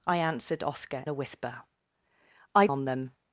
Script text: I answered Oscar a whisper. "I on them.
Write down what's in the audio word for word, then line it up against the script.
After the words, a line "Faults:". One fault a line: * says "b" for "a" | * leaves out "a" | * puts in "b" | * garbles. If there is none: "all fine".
I answered Oscar a whisper. "I on them.
Faults:
all fine